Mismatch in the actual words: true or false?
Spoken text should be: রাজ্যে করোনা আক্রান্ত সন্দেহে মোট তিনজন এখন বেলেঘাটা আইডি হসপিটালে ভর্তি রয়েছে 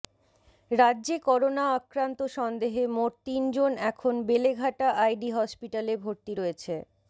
false